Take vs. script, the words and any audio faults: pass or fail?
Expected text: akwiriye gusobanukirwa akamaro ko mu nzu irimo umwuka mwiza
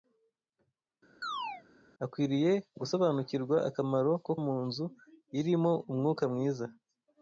fail